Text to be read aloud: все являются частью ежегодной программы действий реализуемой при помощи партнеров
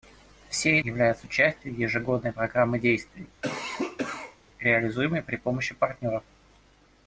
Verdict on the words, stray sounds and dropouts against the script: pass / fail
fail